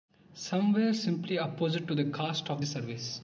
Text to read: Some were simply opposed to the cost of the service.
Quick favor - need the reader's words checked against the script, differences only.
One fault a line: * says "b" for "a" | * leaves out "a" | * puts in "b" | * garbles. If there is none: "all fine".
all fine